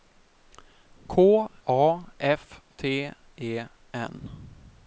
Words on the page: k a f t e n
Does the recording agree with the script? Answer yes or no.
yes